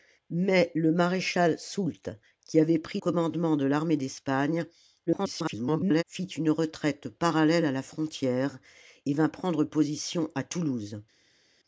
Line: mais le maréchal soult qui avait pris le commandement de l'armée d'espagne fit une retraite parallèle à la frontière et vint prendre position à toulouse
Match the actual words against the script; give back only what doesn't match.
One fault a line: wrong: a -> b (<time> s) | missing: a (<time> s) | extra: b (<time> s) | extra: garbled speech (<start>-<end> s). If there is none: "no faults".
missing: le (3.0 s)
extra: garbled speech (5.1-6.0 s)